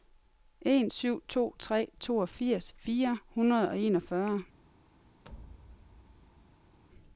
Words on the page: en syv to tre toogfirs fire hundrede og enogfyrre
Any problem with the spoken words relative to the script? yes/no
no